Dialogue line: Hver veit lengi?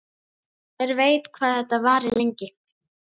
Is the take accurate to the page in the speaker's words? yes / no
no